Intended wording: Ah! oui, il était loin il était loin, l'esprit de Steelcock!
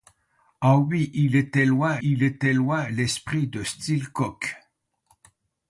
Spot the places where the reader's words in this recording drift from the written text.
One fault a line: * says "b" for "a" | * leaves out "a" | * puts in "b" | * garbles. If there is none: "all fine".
all fine